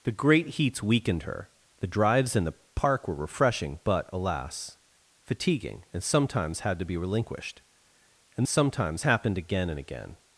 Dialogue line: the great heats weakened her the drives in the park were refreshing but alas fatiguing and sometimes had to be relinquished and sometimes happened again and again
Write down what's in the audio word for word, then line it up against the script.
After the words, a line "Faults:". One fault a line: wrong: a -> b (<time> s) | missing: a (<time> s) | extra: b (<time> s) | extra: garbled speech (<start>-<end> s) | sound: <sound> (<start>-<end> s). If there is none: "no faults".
the great heats weakened her the drives in the park were refreshing but alas fatiguing and sometimes had to be relinquished and sometimes happened again and again
Faults:
no faults